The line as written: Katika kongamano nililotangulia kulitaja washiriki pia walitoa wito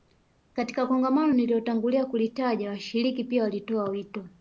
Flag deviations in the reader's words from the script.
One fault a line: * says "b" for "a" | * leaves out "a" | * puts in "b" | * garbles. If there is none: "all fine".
all fine